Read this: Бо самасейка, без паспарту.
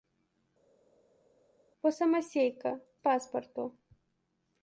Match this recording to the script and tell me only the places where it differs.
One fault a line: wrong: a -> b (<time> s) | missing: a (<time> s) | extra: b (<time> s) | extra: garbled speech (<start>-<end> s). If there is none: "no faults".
missing: без (2.7 s)